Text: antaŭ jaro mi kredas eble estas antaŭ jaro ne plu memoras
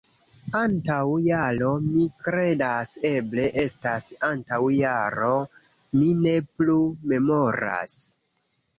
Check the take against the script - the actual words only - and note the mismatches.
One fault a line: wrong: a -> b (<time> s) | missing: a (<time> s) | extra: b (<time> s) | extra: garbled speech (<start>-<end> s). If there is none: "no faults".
extra: mi (6.0 s)